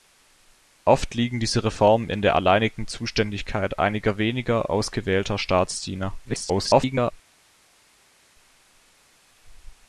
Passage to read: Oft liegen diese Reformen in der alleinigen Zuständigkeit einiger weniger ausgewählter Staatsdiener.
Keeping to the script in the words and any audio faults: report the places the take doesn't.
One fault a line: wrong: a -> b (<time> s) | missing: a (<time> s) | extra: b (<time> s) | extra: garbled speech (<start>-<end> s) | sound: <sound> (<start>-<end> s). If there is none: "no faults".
extra: garbled speech (6.2-7.1 s)